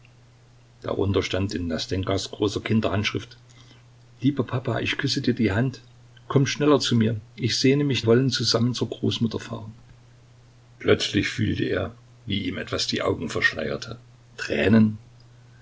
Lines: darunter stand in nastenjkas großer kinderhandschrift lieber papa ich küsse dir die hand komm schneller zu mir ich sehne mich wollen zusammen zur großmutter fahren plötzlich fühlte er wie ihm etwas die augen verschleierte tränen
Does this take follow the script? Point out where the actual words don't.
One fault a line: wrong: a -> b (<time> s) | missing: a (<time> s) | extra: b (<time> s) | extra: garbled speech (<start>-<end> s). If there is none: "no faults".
no faults